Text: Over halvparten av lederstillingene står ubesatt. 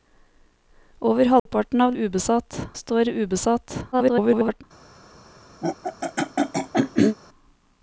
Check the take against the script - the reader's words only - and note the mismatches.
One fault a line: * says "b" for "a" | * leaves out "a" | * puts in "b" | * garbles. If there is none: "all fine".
* says "ubesatt" for "lederstillingene"
* garbles